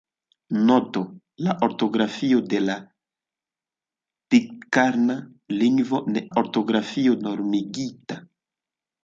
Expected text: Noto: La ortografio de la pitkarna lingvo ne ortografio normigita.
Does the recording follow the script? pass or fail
pass